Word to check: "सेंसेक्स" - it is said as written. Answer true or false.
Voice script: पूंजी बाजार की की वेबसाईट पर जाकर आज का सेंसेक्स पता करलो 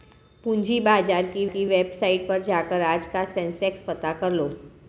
true